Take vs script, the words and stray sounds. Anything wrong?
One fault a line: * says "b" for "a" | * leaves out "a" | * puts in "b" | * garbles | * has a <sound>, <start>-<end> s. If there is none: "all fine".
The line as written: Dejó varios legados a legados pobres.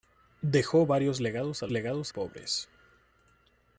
all fine